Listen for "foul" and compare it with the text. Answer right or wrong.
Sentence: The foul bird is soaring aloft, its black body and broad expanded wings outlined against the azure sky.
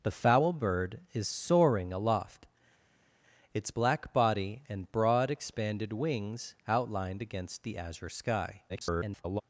right